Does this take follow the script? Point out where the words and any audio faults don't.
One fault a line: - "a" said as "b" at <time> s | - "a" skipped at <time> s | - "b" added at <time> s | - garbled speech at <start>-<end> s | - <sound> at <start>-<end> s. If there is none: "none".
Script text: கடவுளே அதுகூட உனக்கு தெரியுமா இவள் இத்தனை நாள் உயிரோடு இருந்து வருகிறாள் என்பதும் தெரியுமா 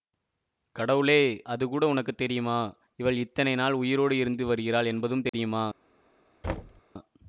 - dropout at 5.3-5.3 s
- thud at 6.4-6.8 s